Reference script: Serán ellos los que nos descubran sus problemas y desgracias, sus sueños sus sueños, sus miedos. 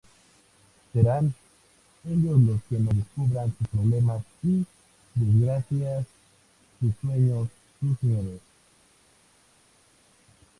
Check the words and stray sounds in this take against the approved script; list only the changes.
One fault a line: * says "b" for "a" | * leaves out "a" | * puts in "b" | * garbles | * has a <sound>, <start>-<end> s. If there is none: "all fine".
* leaves out "sueños sus"